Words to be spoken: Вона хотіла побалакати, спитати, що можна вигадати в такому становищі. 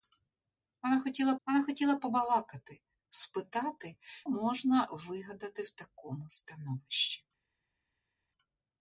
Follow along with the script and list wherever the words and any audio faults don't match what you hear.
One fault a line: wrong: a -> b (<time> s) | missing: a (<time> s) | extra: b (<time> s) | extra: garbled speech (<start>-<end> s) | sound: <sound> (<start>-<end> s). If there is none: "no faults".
extra: вона хотіла (1.4 s)
missing: що (4.0 s)